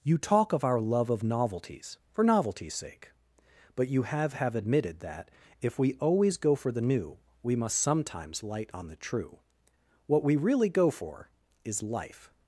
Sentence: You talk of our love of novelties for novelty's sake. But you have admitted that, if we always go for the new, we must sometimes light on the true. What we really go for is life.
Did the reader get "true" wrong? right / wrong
right